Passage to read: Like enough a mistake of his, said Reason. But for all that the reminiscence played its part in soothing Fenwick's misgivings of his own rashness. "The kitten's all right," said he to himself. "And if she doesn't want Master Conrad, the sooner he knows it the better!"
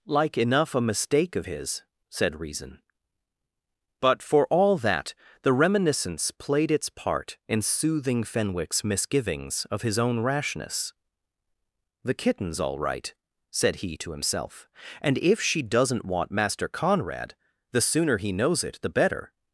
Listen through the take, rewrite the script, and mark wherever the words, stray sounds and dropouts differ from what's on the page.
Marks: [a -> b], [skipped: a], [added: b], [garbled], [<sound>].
Like enough a mistake of his, said Reason. But for all that the reminiscence played its part in soothing Fenwick's misgivings of his own rashness. "The kitten's all right," said he to himself. "And if she doesn't want Master Conrad, the sooner he knows it the better!"